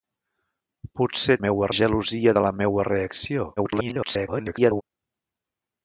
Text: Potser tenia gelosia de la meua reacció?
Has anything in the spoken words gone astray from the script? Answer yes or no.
yes